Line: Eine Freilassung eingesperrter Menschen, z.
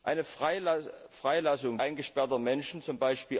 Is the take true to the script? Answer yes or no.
yes